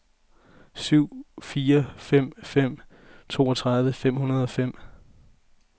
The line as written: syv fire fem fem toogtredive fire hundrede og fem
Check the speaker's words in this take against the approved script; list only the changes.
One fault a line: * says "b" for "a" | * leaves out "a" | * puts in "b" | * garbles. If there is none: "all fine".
* says "fem" for "fire"